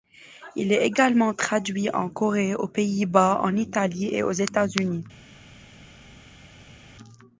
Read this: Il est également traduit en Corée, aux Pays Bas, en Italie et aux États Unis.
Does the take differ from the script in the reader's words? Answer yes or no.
no